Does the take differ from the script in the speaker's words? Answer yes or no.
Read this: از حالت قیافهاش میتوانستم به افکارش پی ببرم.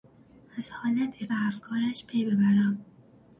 yes